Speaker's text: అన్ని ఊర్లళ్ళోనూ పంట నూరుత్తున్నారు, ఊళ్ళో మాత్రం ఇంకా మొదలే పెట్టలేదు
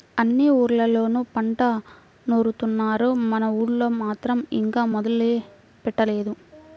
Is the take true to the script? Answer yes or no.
no